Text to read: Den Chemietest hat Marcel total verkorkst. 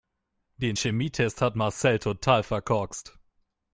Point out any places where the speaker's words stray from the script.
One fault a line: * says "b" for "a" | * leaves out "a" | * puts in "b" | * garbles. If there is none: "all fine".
all fine